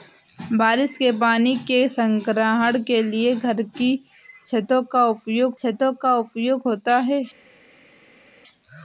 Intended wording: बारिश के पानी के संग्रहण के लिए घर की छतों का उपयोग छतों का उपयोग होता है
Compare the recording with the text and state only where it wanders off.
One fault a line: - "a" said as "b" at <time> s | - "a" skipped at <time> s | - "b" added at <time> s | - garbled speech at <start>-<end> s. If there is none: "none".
none